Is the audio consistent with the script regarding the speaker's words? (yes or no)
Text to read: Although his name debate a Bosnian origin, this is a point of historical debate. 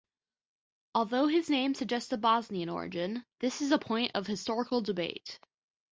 no